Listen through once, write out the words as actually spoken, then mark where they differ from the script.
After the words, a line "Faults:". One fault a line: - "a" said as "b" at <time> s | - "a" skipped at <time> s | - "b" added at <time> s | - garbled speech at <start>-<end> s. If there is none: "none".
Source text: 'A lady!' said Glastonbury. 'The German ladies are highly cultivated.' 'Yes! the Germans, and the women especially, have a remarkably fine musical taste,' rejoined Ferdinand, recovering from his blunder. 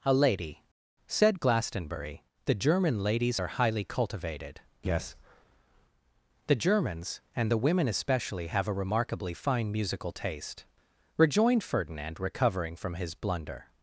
'A lady!' said Glastonbury. 'The German ladies are highly cultivated.' 'Yes! the Germans, and the women especially, have a remarkably fine musical taste,' rejoined Ferdinand, recovering from his blunder.
Faults:
none